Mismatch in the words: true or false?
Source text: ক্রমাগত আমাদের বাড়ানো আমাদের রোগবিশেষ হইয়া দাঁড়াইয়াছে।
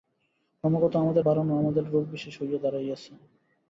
false